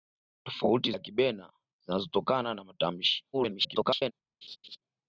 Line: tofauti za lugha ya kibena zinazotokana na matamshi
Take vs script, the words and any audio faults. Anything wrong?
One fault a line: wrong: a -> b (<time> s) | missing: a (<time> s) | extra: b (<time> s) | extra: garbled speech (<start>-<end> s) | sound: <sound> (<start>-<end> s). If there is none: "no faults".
missing: za lugha (0.9 s)
extra: garbled speech (3.3-4.1 s)
sound: laugh (4.4-4.8 s)